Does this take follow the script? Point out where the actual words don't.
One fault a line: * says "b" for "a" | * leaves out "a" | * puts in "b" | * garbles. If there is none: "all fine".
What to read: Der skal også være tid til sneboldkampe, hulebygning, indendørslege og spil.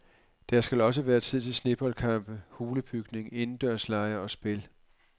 all fine